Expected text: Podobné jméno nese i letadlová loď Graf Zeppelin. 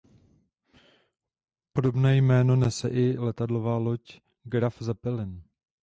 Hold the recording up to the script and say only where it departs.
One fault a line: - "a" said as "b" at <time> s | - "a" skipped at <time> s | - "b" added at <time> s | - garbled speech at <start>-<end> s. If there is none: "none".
none